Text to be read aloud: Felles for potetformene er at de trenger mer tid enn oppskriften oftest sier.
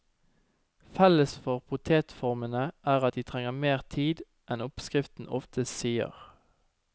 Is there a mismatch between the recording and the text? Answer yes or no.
no